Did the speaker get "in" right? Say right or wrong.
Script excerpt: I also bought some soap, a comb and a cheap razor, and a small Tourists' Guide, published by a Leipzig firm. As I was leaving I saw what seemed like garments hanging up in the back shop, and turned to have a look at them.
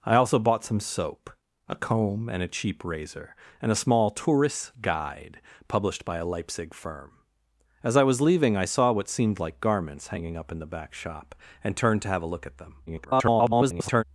right